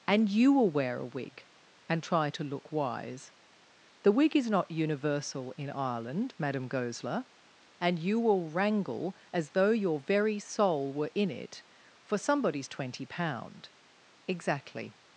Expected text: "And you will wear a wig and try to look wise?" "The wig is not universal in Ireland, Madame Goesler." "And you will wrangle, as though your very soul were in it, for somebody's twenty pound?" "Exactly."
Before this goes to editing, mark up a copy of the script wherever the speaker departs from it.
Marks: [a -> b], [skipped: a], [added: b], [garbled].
"And you will wear a wig and try to look wise?" "The wig is not universal in Ireland, Madame Goesler." "And you will wrangle, as though your very soul were in it, for somebody's twenty pound?" "Exactly."